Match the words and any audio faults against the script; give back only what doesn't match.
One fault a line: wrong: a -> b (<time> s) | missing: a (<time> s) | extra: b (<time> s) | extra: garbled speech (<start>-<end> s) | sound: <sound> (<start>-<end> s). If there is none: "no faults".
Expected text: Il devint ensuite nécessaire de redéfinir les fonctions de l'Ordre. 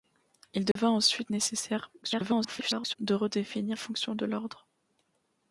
sound: dropout (0.7-0.8 s)
extra: garbled speech (2.0-3.0 s)
missing: les (3.8 s)